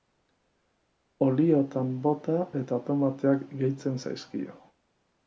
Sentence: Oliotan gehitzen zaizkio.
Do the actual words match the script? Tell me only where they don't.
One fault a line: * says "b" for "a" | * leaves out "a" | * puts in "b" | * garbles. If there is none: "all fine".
* puts in "bota eta tomateak"